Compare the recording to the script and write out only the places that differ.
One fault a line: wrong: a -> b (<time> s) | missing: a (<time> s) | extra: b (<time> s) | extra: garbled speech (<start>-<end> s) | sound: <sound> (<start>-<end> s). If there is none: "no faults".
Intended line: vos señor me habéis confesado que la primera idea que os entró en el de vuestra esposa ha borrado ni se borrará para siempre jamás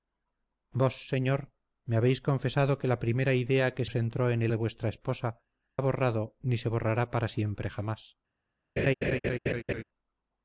sound: laugh (8.8-9.8 s)